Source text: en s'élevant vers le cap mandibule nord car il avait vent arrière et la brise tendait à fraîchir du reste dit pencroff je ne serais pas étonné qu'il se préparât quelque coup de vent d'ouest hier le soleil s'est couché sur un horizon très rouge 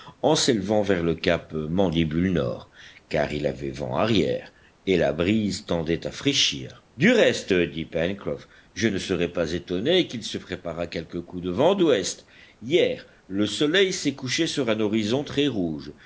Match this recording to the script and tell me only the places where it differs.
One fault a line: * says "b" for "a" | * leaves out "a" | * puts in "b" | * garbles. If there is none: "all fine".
all fine